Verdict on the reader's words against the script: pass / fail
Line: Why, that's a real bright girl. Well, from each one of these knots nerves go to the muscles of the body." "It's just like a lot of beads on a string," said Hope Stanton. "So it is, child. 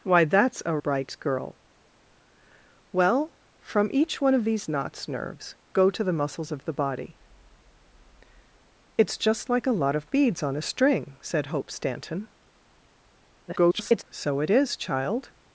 fail